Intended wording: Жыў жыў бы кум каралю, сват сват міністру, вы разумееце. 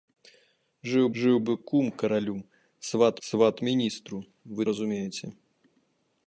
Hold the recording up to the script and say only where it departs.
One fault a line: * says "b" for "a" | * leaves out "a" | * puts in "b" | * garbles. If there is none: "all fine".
all fine